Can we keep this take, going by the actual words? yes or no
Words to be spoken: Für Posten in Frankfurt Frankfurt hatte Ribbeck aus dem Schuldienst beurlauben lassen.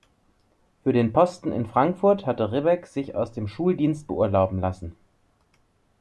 no